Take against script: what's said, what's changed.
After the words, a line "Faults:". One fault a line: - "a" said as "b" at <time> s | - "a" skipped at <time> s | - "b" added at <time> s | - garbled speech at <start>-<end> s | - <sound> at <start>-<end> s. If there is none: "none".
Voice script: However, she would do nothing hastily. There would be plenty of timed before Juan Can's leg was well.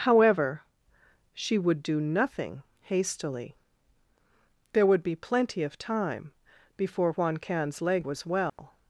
However, she would do nothing hastily. There would be plenty of time before Juan Can's leg was well.
Faults:
- "timed" said as "time" at 5.8 s
- dropout at 8.5-8.6 s